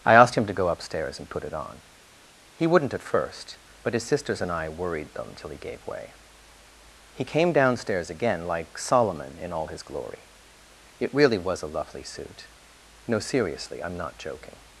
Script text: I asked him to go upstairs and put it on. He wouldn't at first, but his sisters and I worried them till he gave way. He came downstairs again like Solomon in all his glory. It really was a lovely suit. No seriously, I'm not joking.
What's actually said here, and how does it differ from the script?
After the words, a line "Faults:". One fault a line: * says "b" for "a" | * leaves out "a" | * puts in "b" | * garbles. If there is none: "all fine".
I asked him to go upstairs and put it on. He wouldn't at first, but his sisters and I worried them till he gave way. He came downstairs again like Solomon in all his glory. It really was a lovely suit. No seriously, I'm not joking.
Faults:
all fine